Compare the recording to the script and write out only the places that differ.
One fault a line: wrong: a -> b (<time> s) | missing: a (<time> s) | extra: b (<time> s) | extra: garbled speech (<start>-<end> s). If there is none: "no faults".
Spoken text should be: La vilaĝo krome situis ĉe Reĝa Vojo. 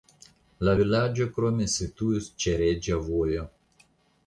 no faults